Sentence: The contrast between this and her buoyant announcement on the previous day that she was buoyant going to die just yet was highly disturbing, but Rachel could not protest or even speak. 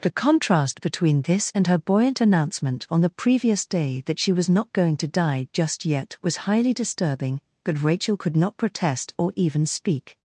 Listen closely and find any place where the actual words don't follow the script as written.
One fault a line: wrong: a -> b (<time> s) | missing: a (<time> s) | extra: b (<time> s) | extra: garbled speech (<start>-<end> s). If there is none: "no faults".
wrong: buoyant -> not (4.5 s)